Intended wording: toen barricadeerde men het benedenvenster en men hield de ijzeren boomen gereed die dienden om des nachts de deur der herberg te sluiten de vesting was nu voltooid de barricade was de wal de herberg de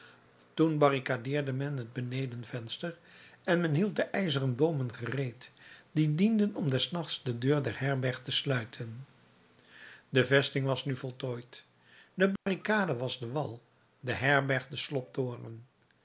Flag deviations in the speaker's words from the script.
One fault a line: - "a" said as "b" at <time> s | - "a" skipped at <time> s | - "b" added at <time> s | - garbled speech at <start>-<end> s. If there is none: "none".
none